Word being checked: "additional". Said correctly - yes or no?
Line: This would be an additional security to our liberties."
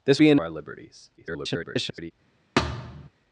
no